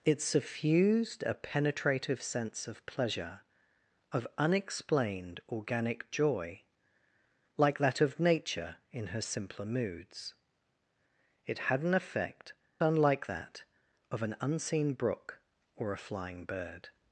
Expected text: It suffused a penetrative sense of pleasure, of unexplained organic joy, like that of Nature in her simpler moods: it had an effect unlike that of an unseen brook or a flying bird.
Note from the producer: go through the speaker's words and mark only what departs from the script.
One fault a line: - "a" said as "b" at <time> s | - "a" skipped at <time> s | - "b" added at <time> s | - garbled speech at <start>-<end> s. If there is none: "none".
none